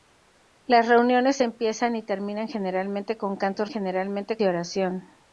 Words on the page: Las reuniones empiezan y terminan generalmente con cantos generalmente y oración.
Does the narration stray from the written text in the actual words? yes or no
no